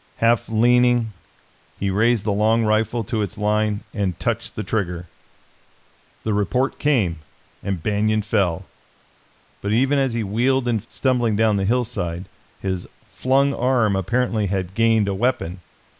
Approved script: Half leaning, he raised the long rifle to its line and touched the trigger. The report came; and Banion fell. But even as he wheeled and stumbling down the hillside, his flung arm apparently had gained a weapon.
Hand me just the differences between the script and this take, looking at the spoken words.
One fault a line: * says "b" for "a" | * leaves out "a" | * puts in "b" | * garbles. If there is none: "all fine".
all fine